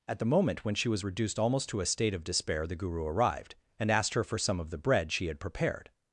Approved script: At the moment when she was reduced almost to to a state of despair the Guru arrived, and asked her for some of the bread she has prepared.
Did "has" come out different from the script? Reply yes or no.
yes